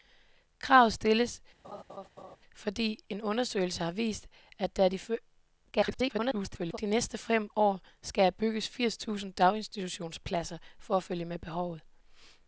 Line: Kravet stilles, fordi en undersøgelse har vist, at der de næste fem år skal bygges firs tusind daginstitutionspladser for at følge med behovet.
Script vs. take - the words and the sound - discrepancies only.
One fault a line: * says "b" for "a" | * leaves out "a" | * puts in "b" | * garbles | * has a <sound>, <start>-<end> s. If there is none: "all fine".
* has a laugh, 1.6-2.4 s
* garbles